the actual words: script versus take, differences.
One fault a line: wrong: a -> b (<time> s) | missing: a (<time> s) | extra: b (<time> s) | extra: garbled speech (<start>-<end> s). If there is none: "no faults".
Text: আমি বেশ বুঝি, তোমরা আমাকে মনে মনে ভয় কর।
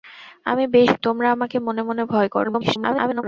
missing: বুঝি (0.9 s)
extra: garbled speech (2.4-3.2 s)